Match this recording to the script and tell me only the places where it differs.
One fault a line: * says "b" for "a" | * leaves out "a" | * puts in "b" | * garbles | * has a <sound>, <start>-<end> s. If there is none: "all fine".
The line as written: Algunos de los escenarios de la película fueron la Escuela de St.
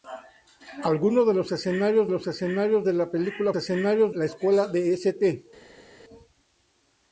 * puts in "los escenarios"
* says "escenarios" for "fueron"